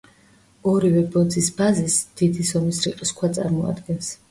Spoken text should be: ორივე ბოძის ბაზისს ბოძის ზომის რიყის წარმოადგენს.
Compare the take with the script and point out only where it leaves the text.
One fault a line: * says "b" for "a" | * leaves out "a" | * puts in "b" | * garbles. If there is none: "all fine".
* says "დიდი" for "ბოძის"
* puts in "ქვა"